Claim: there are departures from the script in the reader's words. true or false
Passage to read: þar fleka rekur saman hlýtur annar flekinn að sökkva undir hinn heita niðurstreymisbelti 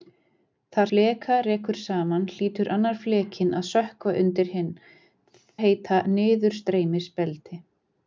false